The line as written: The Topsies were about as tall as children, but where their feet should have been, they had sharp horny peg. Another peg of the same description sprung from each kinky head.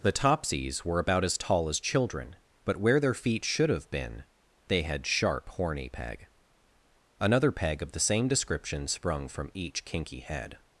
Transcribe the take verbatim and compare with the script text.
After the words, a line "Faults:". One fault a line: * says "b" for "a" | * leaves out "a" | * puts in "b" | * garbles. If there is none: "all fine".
The Topsies were about as tall as children, but where their feet should have been, they had sharp horny peg. Another peg of the same description sprung from each kinky head.
Faults:
all fine